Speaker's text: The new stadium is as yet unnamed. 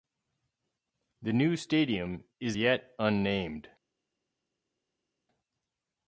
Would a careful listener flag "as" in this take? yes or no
yes